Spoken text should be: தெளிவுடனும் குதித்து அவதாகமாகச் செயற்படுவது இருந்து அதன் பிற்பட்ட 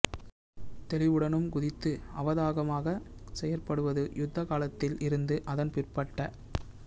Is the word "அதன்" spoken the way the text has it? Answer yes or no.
yes